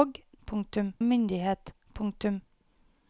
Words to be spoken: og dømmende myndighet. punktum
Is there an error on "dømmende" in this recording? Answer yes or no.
yes